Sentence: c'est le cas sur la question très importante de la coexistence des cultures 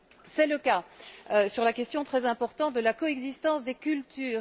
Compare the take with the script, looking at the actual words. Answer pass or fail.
pass